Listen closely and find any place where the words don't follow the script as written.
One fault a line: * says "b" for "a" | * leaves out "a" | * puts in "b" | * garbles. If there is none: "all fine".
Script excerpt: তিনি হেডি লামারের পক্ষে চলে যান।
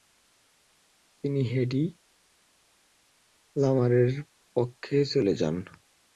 all fine